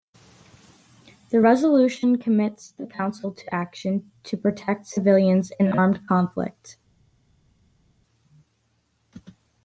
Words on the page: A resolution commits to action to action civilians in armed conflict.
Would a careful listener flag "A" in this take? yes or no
yes